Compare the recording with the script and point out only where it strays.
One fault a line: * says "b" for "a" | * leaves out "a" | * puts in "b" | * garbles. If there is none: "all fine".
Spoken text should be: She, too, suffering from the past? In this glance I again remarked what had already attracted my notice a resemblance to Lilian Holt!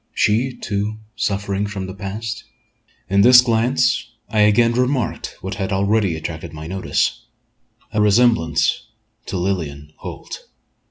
all fine